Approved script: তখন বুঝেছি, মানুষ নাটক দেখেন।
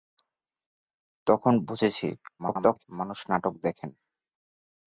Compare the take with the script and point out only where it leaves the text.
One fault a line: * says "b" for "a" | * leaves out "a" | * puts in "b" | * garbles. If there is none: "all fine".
* garbles